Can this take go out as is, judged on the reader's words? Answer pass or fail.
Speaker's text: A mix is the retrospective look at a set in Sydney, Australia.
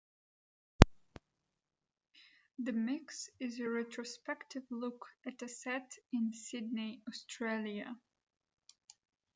fail